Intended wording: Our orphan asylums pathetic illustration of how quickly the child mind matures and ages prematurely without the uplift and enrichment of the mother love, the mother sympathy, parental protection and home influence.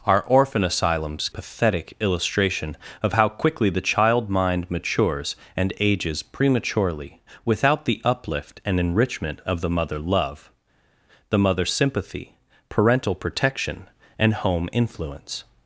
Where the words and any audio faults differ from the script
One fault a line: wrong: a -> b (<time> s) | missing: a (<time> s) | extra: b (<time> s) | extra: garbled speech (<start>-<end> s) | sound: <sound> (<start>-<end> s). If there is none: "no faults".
no faults